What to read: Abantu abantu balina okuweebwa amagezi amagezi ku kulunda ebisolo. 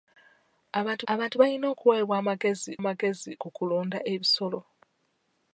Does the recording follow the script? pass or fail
pass